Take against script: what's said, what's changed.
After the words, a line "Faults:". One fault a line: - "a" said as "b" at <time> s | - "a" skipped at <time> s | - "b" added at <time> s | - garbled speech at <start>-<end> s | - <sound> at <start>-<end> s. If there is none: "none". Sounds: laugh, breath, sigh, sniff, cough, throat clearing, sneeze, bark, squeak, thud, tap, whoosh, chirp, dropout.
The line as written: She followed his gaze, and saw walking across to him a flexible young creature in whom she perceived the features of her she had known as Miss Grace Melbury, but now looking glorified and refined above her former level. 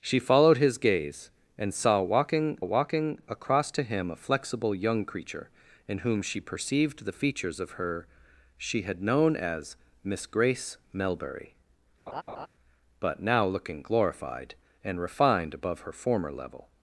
She followed his gaze, and saw walking walking across to him a flexible young creature in whom she perceived the features of her she had known as Miss Grace Melbury, but now looking glorified and refined above her former level.
Faults:
- "walking" added at 2.6 s
- laugh at 12.1-12.5 s